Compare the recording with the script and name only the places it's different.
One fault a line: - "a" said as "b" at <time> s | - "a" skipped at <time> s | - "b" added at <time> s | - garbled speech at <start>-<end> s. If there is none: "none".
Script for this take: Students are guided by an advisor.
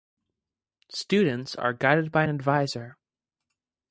none